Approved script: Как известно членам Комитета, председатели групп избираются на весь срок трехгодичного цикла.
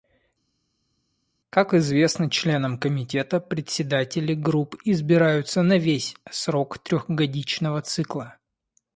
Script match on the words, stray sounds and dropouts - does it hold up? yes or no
yes